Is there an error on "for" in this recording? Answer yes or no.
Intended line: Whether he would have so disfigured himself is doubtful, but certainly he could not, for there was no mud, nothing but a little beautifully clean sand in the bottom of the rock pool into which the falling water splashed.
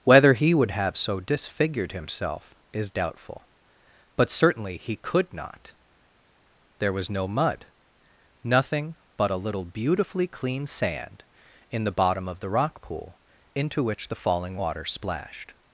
yes